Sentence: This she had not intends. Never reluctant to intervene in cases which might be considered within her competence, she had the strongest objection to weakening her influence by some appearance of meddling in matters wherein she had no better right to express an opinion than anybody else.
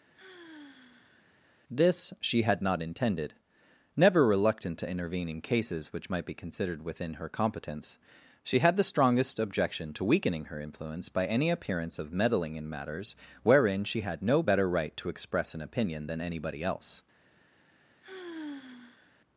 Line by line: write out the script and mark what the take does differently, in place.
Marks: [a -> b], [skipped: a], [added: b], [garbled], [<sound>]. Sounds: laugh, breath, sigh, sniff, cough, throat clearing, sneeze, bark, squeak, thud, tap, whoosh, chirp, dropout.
[sigh] This she had not [intends. -> intended] Never reluctant to intervene in cases which might be considered within her competence, she had the strongest objection to weakening her influence by [some -> any] appearance of meddling in matters wherein she had no better right to express an opinion than anybody else. [sigh]